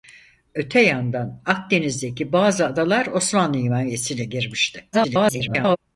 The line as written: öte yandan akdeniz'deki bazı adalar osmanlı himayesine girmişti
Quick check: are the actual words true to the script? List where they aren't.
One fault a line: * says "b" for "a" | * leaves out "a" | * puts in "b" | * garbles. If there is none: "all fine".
* garbles